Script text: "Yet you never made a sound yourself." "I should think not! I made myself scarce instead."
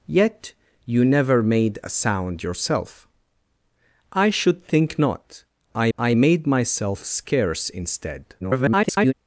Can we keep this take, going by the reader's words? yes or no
no